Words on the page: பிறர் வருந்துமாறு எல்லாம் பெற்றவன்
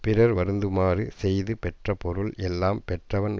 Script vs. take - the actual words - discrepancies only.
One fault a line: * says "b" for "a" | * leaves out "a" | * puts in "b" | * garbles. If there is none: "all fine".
* puts in "செய்து பெற்ற பொருள்"